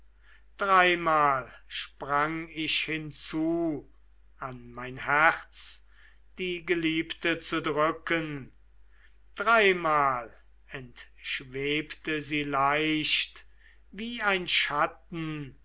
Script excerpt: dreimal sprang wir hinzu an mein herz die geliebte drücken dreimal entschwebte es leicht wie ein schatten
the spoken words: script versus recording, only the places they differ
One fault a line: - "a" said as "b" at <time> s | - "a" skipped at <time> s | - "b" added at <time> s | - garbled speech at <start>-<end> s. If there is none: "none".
- "wir" said as "ich" at 2.5 s
- "zu" added at 7.4 s
- "es" said as "sie" at 12.2 s